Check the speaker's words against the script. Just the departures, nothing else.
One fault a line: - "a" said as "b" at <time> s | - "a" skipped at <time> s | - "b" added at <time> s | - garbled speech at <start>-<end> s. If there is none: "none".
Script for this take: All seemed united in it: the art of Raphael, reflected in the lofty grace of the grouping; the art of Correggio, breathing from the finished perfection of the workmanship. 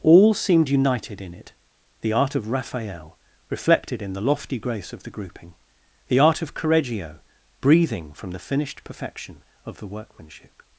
none